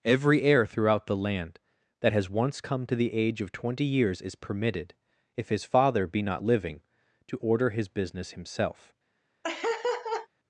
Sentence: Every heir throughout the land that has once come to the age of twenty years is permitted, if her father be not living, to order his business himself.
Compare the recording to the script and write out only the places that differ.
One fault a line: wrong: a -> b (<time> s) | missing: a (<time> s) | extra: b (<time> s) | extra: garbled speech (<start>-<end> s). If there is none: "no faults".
wrong: her -> his (5.5 s)